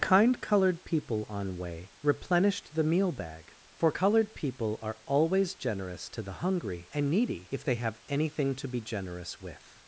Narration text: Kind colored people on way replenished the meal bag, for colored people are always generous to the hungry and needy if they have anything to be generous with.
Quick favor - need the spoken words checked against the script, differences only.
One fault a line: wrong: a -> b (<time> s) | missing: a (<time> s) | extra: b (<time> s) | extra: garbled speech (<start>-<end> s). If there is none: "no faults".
no faults